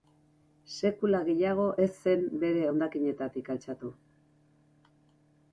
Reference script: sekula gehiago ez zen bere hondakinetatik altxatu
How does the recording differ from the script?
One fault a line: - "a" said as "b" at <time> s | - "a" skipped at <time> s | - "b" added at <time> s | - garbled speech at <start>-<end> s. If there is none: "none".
none